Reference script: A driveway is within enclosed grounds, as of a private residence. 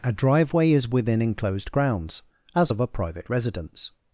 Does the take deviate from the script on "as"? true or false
false